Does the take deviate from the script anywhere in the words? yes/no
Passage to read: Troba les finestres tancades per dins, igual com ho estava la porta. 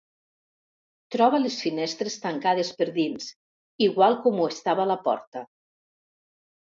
no